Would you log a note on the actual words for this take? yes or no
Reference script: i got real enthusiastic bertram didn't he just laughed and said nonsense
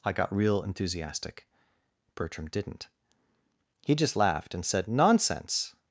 no